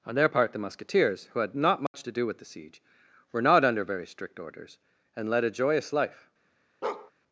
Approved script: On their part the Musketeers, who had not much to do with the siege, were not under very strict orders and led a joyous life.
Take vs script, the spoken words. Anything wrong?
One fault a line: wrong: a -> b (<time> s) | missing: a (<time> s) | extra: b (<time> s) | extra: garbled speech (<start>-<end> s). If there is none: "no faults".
no faults